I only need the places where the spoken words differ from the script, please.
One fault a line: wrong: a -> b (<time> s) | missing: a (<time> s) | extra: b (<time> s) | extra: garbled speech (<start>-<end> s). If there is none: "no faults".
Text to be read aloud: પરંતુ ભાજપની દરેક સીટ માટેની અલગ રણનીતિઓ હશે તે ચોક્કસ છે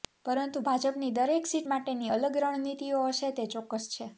no faults